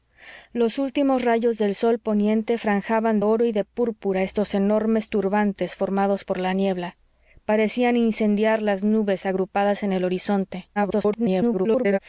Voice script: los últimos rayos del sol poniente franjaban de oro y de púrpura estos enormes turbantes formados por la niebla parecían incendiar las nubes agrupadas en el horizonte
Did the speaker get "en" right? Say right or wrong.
right